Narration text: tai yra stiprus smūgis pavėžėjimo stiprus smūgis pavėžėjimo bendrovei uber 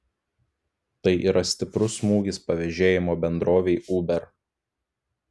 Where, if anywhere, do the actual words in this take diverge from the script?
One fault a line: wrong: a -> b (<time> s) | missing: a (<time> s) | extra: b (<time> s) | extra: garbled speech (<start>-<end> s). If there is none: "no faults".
missing: stiprus smūgis pavėžėjimo (3.2 s)